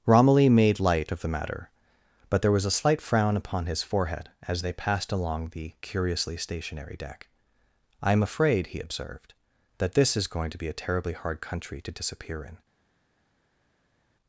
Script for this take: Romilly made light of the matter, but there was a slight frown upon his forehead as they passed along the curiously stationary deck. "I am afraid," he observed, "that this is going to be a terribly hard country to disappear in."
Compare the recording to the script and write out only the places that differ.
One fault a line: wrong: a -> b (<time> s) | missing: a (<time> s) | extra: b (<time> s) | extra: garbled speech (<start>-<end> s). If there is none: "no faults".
no faults